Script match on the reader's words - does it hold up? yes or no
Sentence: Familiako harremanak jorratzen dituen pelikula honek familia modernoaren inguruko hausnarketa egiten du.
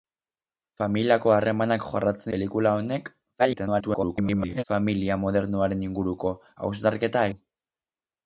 no